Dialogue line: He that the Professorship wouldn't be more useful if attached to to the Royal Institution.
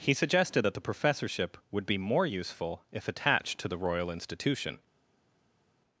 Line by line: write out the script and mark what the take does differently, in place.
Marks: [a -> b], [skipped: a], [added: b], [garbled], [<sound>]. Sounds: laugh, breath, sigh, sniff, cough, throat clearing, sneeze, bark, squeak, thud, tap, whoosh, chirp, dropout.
He [added: suggested] that the Professorship [wouldn't -> would] be more useful if attached to [skipped: to] the Royal Institution.